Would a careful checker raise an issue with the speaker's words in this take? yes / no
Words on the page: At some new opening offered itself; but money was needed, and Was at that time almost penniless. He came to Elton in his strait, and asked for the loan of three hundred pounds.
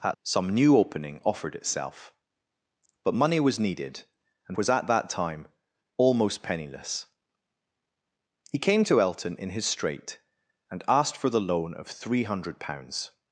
no